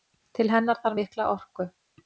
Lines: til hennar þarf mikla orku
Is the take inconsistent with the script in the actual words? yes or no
no